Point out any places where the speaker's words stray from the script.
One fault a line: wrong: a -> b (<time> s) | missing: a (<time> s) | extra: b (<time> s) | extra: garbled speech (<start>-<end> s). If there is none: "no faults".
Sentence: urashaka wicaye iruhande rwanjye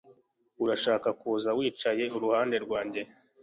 extra: kuza (1.2 s)